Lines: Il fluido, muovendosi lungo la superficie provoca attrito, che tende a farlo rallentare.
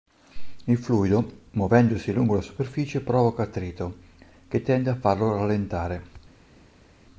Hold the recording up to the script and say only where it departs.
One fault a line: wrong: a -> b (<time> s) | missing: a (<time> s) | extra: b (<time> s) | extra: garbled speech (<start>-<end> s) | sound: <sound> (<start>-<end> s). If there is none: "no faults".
no faults